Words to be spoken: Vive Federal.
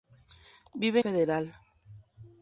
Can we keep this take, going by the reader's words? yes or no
yes